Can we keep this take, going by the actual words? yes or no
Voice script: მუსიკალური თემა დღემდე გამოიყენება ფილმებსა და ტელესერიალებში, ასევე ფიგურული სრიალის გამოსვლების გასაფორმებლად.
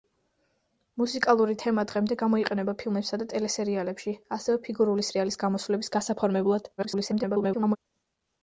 no